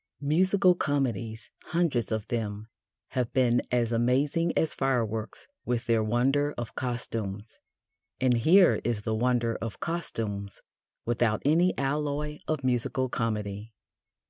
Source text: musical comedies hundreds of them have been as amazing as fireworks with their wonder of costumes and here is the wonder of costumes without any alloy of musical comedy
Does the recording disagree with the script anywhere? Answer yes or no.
no